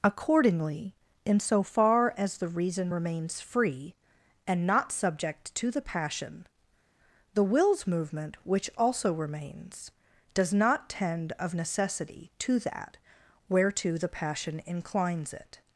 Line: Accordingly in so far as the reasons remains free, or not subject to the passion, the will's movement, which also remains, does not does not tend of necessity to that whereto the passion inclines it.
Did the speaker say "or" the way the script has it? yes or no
no